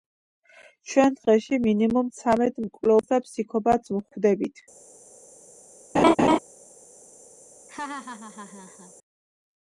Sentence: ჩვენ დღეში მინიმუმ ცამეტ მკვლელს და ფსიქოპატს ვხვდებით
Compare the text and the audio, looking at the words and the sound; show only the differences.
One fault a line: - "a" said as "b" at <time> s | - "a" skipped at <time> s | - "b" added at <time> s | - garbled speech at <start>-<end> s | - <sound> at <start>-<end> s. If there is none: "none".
- laugh at 5.9-6.4 s
- laugh at 7.7-8.9 s